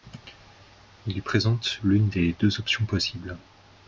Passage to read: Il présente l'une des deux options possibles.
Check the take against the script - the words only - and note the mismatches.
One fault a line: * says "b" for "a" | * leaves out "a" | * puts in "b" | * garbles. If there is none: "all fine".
all fine